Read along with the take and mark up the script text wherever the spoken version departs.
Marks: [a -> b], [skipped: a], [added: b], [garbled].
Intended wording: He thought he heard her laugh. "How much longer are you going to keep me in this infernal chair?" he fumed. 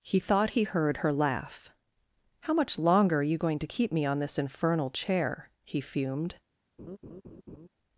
He thought he heard her laugh. "How much longer are you going to keep me [in -> on] this infernal chair?" he fumed.